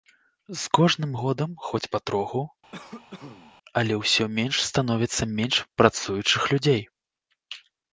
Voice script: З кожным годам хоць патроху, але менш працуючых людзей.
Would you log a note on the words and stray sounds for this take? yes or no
yes